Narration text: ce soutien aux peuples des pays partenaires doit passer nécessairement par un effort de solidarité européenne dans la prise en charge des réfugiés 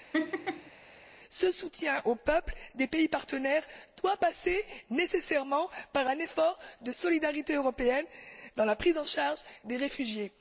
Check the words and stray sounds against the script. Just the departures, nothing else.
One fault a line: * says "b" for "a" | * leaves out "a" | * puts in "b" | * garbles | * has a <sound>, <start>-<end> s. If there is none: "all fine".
* has a laugh, 0.1-0.7 s